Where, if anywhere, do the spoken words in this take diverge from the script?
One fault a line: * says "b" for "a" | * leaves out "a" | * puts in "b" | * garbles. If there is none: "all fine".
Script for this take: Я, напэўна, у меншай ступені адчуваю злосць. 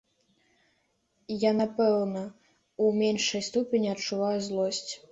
all fine